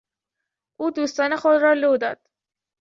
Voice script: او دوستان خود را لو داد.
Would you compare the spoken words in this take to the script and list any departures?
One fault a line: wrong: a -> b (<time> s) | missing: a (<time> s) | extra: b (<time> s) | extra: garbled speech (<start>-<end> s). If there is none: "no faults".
no faults